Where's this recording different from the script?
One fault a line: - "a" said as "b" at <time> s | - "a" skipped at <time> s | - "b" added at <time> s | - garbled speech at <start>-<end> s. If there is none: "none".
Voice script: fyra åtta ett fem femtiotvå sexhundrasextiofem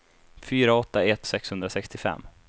- "fem femtiotvå" skipped at 1.3 s